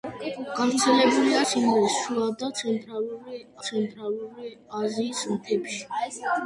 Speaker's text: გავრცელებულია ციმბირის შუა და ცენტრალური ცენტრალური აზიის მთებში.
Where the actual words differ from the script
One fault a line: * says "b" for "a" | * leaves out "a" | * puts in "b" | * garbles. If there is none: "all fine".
all fine